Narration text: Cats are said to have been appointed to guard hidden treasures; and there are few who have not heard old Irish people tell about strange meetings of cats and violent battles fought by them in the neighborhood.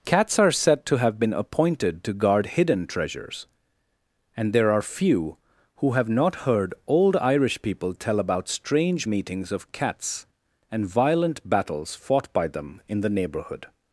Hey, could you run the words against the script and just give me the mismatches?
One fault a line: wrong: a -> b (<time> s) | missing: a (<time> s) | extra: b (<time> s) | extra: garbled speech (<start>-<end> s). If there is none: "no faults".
no faults